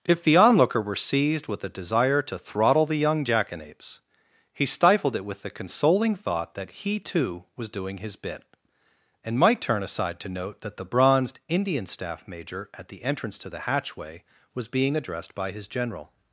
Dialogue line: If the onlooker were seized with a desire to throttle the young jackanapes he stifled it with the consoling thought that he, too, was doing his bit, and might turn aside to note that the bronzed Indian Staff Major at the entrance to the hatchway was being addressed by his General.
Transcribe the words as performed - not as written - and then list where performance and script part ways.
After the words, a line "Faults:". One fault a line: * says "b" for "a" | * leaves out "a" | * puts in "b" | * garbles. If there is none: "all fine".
If the onlooker were seized with a desire to throttle the young jackanapes he stifled it with the consoling thought that he, too, was doing his bit, and might turn aside to note that the bronzed Indian Staff Major at the entrance to the hatchway was being addressed by his General.
Faults:
all fine